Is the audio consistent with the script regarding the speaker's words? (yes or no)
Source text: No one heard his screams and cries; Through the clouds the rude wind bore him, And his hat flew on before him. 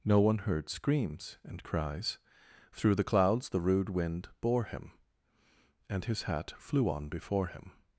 no